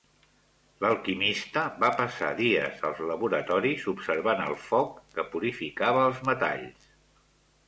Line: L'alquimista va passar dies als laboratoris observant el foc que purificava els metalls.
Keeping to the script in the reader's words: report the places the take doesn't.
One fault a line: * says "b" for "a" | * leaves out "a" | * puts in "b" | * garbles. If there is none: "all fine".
all fine